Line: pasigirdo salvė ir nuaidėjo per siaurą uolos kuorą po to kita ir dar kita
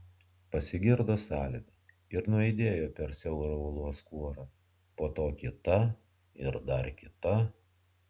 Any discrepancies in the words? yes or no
no